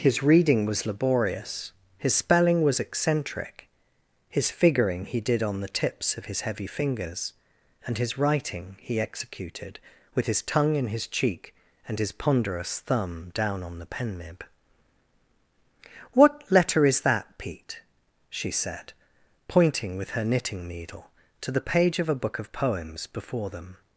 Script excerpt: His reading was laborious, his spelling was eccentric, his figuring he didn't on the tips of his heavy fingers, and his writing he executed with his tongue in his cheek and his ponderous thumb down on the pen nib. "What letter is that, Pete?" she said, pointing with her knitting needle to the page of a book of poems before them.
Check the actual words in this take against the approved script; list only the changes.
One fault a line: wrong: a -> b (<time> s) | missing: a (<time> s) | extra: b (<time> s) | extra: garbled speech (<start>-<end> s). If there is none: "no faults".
wrong: didn't -> did (5.2 s)